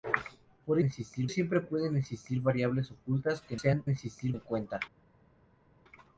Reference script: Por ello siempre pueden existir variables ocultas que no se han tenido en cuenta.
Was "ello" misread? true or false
true